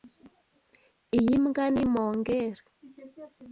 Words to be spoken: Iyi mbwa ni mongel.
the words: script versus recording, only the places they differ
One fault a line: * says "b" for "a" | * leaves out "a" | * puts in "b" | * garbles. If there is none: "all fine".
all fine